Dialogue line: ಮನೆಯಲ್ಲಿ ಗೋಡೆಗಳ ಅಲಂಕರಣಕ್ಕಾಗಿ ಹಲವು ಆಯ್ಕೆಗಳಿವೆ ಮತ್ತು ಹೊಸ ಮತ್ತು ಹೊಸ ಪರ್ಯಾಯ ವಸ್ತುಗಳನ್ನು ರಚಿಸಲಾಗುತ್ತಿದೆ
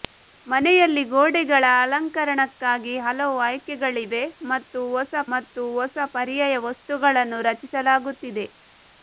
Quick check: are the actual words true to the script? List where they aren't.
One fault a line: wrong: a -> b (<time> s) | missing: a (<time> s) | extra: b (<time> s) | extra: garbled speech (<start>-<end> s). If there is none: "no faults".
no faults